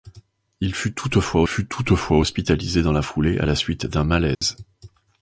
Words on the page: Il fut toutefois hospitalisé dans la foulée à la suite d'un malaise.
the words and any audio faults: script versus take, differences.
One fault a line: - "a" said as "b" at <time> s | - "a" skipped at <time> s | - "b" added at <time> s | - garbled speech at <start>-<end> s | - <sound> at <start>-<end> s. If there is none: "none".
- "fut toutefois" added at 1.5 s
- dropout at 4.3-4.4 s